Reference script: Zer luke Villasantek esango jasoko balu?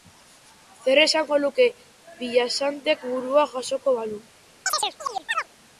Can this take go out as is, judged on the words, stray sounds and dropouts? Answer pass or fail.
fail